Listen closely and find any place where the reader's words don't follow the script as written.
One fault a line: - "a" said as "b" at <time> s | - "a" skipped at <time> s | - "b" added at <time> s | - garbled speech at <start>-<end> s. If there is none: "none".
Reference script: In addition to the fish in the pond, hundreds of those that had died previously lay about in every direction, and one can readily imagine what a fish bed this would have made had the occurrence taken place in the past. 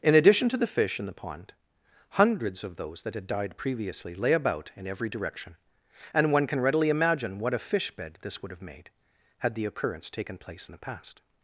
none